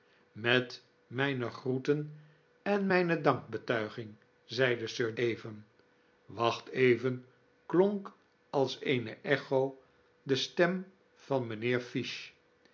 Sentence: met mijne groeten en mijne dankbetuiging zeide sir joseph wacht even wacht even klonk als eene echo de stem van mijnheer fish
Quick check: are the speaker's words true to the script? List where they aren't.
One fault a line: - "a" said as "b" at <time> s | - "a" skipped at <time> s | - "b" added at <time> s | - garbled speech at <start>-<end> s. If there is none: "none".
- "joseph wacht" skipped at 5.1 s